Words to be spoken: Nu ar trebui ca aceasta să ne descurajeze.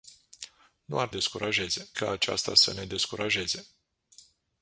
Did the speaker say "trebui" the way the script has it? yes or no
no